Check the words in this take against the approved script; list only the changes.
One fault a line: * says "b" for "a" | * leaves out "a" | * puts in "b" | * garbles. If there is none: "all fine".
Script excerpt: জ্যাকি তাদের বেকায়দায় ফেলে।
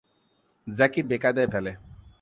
* leaves out "তাদের"